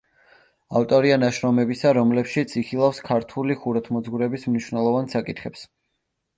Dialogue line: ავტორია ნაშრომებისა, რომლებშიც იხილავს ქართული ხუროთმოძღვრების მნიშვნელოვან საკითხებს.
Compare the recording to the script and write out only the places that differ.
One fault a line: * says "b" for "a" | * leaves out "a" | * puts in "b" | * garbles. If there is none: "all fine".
all fine